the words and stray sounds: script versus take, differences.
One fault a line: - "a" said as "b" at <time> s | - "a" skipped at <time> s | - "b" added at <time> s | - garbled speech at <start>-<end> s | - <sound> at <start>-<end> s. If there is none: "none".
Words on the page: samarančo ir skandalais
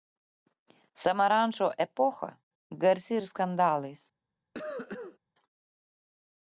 - "epocha garsi" added at 1.9 s
- cough at 4.5-5.2 s